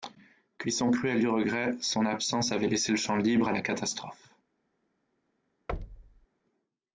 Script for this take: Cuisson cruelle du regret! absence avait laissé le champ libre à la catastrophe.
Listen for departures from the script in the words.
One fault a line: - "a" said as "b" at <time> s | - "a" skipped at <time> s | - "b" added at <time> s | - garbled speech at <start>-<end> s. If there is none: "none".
- "son" added at 1.8 s